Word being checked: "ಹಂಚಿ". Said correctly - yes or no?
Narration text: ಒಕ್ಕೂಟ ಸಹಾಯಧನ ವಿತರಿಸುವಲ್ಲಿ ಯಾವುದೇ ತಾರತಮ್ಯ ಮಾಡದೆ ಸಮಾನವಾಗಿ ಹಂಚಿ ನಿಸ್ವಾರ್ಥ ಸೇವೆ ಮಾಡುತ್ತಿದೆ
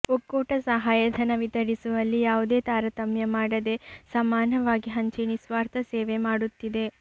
yes